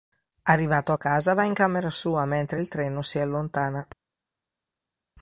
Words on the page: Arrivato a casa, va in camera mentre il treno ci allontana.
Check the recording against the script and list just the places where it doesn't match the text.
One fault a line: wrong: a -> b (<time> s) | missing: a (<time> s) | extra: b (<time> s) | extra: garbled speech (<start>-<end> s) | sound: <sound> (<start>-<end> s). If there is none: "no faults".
extra: sua (1.9 s)
wrong: ci -> si (3.0 s)